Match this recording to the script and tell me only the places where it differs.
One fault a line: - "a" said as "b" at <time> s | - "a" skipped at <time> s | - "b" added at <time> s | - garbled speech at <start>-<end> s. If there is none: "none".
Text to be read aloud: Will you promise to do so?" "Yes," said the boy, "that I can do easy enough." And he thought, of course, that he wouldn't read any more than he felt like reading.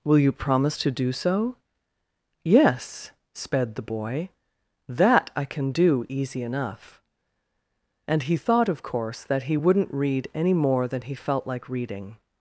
- "said" said as "sped" at 3.3 s